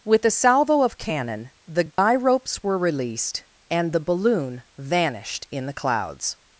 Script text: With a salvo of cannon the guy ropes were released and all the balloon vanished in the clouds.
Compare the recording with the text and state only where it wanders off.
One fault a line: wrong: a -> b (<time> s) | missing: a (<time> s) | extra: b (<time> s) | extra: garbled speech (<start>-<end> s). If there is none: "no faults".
missing: all (3.9 s)